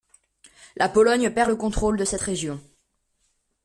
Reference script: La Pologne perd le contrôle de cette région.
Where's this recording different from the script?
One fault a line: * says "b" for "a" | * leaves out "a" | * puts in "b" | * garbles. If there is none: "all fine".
all fine